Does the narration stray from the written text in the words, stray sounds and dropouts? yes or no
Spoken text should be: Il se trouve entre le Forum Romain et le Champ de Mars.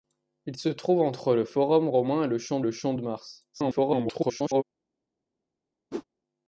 yes